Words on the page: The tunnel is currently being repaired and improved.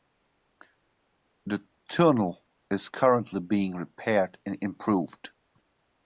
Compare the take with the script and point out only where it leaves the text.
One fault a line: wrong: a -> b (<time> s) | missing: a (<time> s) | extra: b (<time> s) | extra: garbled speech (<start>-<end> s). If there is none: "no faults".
no faults